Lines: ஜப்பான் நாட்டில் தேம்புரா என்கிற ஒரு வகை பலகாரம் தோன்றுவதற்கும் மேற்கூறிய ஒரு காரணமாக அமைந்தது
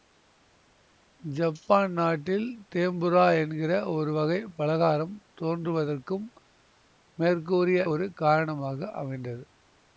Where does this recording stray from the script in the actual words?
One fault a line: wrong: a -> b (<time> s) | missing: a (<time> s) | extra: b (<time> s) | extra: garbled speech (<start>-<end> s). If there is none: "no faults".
no faults